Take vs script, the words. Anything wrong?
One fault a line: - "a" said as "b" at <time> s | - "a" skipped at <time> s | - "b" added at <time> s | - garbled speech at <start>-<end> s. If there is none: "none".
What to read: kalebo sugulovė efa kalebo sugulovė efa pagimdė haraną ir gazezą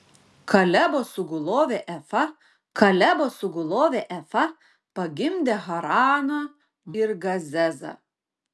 none